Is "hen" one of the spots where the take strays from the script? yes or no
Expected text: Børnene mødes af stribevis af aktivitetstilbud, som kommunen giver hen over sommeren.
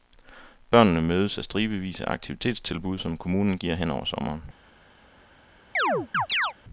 no